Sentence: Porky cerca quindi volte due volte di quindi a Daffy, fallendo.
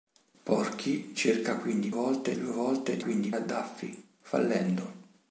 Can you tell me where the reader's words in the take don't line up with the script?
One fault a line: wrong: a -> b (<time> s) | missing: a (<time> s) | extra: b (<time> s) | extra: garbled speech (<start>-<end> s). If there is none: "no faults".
no faults